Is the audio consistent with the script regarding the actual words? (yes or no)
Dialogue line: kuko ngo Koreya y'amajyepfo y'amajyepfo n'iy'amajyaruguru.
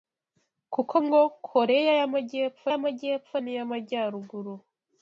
yes